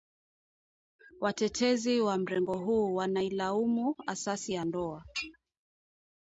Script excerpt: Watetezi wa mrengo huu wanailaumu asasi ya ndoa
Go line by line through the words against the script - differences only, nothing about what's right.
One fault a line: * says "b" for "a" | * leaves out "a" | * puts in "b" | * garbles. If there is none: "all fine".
all fine